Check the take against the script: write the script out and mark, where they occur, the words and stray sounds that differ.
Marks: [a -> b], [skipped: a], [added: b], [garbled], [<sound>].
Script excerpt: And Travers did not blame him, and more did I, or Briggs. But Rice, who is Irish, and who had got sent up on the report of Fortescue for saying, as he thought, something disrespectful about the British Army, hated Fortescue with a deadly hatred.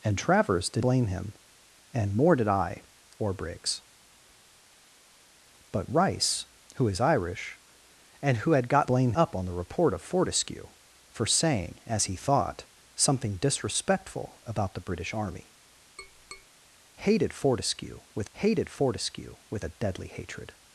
And Travers did [skipped: not] blame him, and more did I, or Briggs. But Rice, who is Irish, and who had got [sent -> blame] up on the report of Fortescue for saying, as he thought, something disrespectful about the British Army, [tap] hated Fortescue with [added: hated Fortescue with] a deadly hatred.